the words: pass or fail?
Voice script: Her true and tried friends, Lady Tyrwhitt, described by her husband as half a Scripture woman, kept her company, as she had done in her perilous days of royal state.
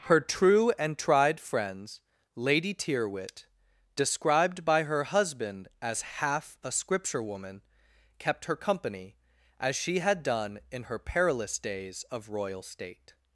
pass